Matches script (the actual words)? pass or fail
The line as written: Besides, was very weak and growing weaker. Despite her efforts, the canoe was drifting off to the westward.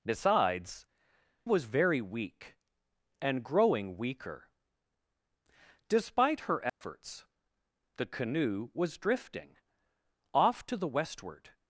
pass